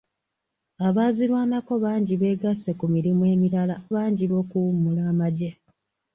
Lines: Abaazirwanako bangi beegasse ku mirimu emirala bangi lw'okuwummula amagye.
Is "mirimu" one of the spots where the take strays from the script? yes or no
no